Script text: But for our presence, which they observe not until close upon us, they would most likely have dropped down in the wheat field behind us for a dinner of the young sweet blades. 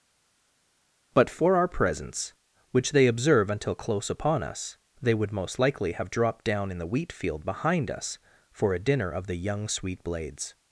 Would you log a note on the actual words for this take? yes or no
yes